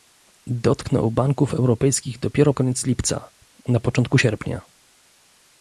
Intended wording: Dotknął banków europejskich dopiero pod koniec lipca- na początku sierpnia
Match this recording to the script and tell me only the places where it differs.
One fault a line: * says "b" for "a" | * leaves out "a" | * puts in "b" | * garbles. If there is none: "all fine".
* leaves out "pod"